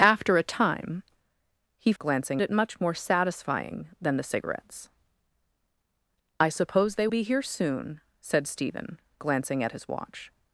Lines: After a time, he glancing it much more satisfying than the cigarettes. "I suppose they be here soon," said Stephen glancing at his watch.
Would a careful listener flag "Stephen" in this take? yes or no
no